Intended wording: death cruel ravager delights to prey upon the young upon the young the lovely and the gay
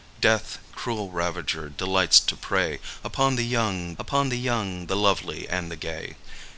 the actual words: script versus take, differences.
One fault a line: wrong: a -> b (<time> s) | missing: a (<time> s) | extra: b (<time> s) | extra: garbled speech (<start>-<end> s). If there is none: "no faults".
no faults